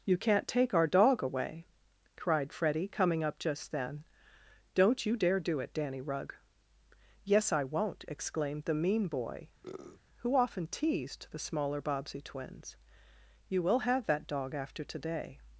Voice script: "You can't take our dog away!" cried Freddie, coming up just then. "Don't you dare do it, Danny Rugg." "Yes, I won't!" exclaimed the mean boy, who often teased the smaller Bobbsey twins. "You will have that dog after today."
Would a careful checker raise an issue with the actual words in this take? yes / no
no